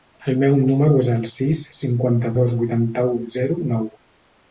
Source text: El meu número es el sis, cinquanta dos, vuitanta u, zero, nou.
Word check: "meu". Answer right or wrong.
right